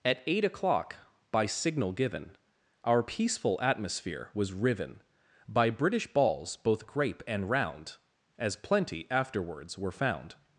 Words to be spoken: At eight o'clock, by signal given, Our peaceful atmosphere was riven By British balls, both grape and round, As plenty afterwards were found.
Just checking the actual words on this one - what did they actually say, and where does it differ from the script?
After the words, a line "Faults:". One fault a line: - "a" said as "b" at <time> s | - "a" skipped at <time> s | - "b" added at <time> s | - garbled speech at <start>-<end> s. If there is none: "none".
At eight o'clock, by signal given, Our peaceful atmosphere was riven By British balls, both grape and round, As plenty afterwards were found.
Faults:
none